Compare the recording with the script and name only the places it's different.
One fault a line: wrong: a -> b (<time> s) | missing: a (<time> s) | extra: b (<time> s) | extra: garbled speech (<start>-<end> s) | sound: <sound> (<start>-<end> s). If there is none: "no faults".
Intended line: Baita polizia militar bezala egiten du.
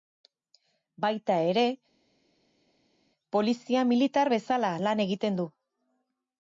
extra: ere (1.5 s)
extra: lan (4.9 s)